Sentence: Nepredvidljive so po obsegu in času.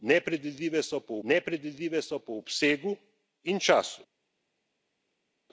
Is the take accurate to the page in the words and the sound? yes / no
no